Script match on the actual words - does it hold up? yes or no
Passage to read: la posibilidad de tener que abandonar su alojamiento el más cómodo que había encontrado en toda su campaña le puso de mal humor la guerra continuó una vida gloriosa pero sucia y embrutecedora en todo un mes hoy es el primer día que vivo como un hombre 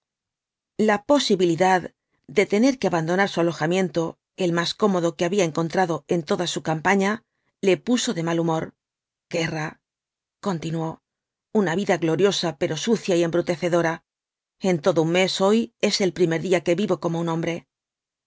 no